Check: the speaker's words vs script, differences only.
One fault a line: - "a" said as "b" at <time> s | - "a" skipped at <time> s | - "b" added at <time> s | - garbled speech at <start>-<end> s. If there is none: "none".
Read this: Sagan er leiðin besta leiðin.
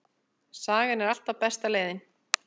- "leiðin" said as "alltaf" at 1.1 s